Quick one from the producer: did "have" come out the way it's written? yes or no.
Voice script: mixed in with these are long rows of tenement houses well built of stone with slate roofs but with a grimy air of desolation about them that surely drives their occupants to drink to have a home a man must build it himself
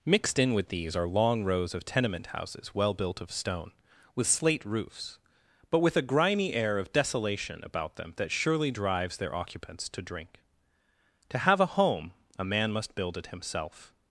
yes